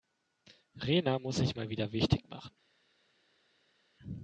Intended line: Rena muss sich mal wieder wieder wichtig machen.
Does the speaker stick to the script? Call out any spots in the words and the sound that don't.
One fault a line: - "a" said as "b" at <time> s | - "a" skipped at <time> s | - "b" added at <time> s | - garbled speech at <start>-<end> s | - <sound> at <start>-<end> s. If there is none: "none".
- "wieder" skipped at 1.9 s